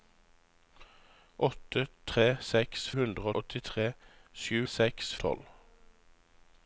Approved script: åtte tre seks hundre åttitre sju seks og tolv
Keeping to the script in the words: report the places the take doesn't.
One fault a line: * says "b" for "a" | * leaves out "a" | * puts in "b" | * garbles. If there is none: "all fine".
all fine